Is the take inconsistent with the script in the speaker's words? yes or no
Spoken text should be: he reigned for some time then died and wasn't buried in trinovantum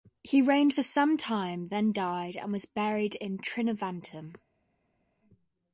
yes